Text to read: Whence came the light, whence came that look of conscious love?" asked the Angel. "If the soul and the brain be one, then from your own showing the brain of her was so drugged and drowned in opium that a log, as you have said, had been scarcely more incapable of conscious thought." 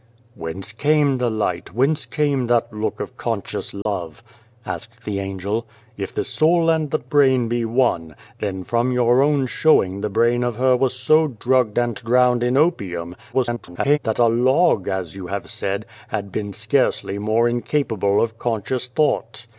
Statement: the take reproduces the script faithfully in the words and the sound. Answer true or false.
false